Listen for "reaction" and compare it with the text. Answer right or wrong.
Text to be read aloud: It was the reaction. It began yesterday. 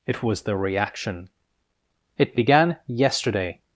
right